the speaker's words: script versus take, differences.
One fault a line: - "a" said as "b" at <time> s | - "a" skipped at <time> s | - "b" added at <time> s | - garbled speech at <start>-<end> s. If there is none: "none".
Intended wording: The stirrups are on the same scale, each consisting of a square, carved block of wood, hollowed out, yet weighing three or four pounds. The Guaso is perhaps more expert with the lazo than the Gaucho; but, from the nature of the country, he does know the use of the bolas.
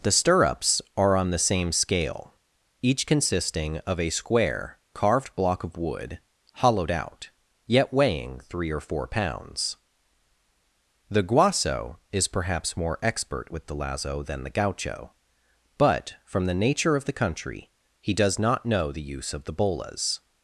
- "not" added at 18.4 s